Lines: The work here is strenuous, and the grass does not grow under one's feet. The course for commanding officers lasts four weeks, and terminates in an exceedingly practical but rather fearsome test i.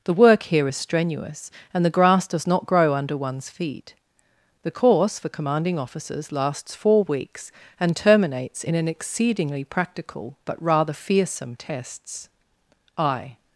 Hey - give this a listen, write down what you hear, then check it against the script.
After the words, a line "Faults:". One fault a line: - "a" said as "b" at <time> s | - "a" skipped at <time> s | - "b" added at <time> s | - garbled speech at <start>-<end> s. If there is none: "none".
The work here is strenuous, and the grass does not grow under one's feet. The course for commanding officers lasts four weeks, and terminates in an exceedingly practical but rather fearsome tests i.
Faults:
- "test" said as "tests" at 11.5 s